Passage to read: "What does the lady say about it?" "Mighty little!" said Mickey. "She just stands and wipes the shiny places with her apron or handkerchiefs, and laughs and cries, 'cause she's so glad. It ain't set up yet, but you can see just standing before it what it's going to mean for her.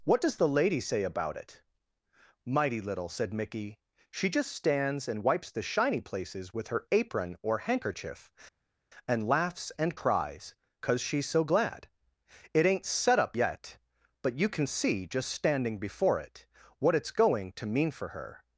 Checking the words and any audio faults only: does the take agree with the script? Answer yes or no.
no